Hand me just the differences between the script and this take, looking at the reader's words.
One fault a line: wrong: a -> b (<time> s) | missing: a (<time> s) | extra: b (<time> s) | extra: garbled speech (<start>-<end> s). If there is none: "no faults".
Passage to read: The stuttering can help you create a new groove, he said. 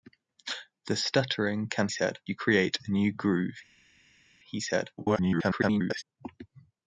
wrong: help -> said (1.9 s)
extra: garbled speech (5.0-6.0 s)